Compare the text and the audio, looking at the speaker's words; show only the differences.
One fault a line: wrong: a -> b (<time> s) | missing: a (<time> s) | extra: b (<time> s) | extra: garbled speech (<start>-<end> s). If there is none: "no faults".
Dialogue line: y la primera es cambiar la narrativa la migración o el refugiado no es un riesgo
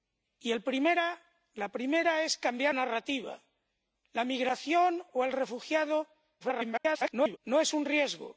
missing: la (2.8 s)
extra: garbled speech (6.4-7.4 s)